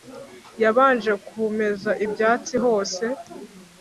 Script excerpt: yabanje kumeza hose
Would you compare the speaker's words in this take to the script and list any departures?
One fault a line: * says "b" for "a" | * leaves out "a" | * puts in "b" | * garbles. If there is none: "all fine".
* puts in "ibyatsi"